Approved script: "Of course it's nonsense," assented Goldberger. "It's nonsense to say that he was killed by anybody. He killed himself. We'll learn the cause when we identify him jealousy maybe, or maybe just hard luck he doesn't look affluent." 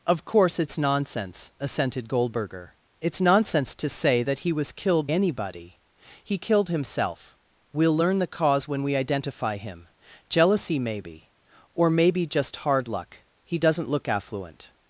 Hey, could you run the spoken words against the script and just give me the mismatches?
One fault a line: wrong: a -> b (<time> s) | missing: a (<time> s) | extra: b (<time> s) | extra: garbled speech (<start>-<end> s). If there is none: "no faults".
missing: by (5.1 s)